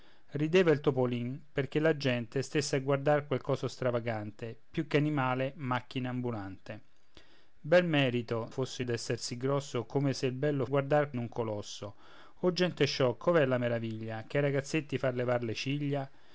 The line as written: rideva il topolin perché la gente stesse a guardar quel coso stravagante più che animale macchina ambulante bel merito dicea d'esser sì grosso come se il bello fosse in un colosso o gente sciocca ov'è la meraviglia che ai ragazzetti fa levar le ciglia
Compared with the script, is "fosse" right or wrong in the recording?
wrong